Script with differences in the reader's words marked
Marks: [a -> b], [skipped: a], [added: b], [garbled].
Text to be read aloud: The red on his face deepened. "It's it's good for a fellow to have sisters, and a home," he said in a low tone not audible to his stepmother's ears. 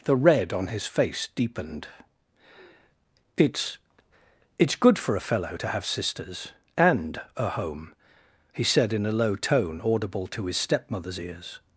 The red on his face deepened. "It's it's good for a fellow to have sisters, and a home," he said in a low tone [skipped: not] audible to his stepmother's ears.